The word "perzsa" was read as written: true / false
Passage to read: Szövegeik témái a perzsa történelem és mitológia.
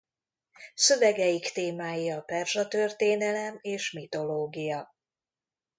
true